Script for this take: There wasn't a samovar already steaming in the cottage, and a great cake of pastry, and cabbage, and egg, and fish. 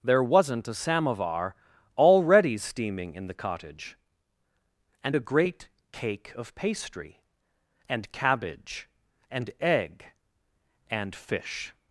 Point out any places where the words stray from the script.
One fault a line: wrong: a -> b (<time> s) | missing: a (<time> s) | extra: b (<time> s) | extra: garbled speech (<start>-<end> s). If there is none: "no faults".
no faults